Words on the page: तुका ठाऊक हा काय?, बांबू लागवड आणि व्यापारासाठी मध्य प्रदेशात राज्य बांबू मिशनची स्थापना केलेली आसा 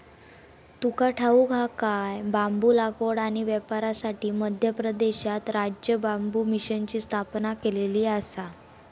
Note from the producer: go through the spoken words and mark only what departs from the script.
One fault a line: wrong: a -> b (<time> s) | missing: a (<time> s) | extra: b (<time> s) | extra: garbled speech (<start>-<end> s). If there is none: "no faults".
no faults